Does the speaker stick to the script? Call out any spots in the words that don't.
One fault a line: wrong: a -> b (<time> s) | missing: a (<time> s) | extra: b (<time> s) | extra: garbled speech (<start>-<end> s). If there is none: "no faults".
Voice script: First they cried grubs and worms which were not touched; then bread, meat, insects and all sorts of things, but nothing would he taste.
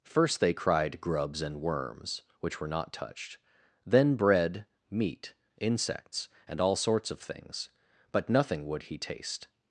no faults